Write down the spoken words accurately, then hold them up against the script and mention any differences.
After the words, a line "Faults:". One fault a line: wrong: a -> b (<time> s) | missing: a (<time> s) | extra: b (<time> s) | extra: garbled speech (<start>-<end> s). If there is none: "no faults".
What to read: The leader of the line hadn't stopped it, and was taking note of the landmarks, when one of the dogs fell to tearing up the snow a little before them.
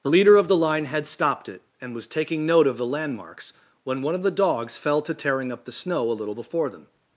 The leader of the line had stopped it, and was taking note of the landmarks, when one of the dogs fell to tearing up the snow a little before them.
Faults:
wrong: hadn't -> had (0.9 s)